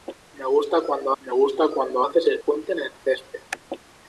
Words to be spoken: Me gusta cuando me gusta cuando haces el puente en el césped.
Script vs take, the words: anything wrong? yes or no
no